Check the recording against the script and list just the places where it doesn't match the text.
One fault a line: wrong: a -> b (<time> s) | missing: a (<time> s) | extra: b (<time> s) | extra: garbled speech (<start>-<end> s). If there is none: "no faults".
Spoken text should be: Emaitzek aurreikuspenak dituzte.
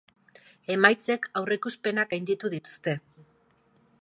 extra: gainditu (2.1 s)